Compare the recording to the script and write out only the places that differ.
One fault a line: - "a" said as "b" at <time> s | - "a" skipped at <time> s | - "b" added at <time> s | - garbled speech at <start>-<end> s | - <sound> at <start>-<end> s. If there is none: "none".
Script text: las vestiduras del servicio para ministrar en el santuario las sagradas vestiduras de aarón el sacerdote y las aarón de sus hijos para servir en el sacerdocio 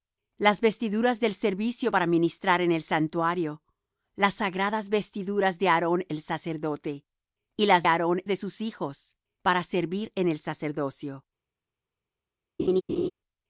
- laugh at 12.6-13.1 s